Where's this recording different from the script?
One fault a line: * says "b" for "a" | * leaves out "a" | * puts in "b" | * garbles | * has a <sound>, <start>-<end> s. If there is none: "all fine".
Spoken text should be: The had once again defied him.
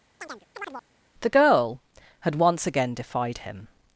* has a chirp, 0.2-0.9 s
* puts in "girl"